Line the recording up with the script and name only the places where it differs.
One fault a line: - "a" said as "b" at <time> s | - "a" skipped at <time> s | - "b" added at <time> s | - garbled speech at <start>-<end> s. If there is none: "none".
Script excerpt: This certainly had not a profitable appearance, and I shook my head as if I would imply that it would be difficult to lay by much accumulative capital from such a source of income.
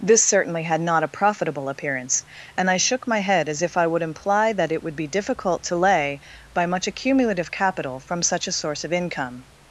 none